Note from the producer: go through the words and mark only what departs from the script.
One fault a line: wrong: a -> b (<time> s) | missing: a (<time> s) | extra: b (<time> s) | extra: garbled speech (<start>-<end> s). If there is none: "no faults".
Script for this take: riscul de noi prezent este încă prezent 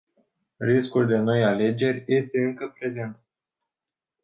wrong: prezent -> alegeri (1.4 s)